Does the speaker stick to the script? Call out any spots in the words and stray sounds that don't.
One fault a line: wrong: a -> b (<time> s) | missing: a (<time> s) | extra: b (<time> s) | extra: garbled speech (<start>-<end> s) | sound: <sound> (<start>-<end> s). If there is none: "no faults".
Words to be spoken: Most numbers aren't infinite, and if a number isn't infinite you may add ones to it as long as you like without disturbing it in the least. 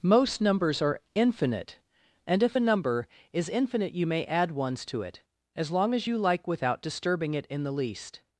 wrong: aren't -> are (0.8 s)
wrong: isn't -> is (3.3 s)